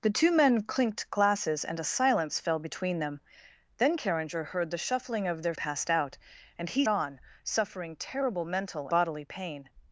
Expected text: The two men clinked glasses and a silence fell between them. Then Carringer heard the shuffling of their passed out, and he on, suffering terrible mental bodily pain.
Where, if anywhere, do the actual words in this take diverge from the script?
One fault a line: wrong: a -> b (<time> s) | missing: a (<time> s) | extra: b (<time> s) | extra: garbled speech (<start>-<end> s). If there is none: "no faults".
no faults